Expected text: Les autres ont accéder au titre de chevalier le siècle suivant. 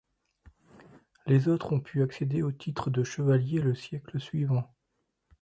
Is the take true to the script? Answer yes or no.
no